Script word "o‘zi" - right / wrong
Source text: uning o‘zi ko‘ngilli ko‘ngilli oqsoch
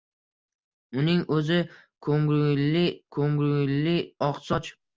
right